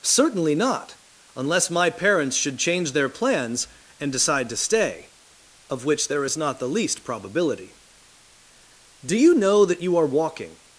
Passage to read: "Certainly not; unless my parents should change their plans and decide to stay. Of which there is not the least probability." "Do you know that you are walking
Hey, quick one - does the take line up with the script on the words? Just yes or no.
yes